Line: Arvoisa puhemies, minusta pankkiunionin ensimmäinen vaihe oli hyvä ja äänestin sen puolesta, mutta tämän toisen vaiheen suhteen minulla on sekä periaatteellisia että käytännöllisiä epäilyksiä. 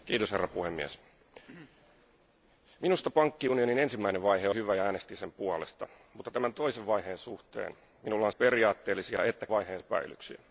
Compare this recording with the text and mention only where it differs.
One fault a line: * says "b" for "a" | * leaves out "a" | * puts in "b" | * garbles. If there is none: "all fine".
* leaves out "oli"
* leaves out "sekä"
* says "vaiheen" for "käytännöllisiä"